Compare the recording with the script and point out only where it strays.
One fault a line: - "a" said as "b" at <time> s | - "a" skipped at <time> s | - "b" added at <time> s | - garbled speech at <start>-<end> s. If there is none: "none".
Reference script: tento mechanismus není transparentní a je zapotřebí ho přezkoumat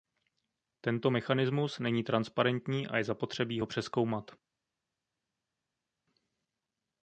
none